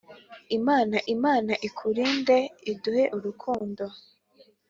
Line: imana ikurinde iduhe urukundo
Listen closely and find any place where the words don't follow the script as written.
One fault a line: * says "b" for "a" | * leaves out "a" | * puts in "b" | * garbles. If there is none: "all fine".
* puts in "imana"